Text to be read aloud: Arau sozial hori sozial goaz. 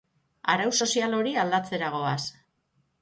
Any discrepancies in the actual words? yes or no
yes